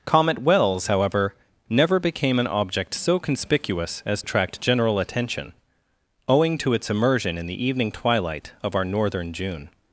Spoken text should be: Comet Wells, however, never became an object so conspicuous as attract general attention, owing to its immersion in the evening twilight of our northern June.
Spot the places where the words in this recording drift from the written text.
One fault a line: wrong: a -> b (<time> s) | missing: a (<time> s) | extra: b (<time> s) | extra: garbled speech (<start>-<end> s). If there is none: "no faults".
no faults